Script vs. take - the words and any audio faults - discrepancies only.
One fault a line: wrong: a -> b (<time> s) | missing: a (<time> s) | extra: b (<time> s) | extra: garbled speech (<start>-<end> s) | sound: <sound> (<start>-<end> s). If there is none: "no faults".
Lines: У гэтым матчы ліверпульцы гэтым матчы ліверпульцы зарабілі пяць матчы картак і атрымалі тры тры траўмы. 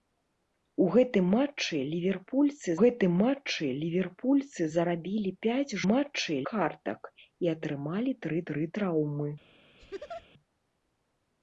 sound: laugh (9.8-10.3 s)